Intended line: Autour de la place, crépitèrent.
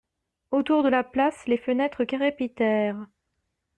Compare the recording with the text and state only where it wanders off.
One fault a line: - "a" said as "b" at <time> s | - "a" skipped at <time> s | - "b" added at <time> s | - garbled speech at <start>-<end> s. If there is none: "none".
- "les fenêtres" added at 1.4 s